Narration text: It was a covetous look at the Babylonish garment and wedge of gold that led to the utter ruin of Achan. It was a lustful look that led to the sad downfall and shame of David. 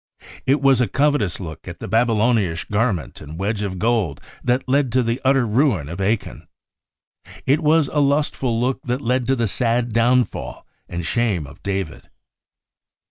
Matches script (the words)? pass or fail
pass